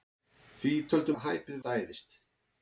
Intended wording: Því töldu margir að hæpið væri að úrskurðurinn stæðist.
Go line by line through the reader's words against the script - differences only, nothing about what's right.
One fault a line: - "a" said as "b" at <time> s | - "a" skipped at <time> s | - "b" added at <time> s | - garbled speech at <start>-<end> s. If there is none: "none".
- "margir" skipped at 1.1 s
- "væri að úrskurðurinn" skipped at 1.6 s